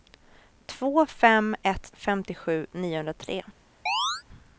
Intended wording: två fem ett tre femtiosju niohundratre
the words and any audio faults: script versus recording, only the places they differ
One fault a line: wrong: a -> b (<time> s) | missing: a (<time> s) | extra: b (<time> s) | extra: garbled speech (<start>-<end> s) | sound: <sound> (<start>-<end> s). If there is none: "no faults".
missing: tre (1.9 s)
sound: chirp (3.9-4.2 s)